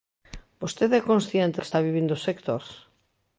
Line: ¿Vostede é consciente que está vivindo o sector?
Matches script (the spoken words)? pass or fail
pass